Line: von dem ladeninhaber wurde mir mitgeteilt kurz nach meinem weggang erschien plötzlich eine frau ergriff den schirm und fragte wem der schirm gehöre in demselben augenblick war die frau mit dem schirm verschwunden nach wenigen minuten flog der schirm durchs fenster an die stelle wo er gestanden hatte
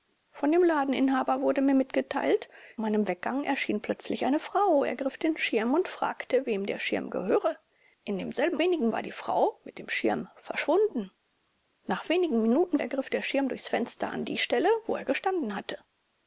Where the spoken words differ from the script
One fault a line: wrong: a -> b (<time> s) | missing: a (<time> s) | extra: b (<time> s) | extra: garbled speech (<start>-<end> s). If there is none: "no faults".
missing: kurz nach (2.5 s)
wrong: augenblick -> wenigen (8.6 s)
wrong: flog -> ergriff (12.8 s)